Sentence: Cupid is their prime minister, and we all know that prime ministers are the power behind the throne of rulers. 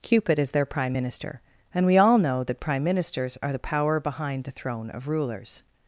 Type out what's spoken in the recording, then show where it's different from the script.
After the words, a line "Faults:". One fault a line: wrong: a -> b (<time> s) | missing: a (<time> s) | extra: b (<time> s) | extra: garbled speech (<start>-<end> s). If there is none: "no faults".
Cupid is their prime minister, and we all know that prime ministers are the power behind the throne of rulers.
Faults:
no faults